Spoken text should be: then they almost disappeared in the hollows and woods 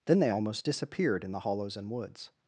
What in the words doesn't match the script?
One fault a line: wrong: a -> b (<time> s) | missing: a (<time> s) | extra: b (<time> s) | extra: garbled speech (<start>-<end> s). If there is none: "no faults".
no faults